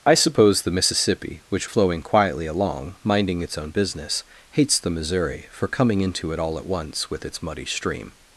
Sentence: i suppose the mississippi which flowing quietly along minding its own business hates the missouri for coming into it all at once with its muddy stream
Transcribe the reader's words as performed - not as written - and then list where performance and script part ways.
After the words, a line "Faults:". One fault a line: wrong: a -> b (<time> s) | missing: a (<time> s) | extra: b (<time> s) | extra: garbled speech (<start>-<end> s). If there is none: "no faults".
i suppose the mississippi which flowing quietly along minding its own business hates the missouri for coming into it all at once with its muddy stream
Faults:
no faults